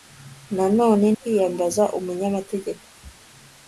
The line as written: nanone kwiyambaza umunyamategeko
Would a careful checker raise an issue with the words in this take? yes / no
no